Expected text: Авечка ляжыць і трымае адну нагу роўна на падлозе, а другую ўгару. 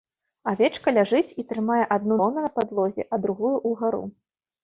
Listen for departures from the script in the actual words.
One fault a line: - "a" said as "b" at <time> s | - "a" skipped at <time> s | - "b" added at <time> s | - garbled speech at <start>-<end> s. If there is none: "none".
- "нагу" skipped at 2.2 s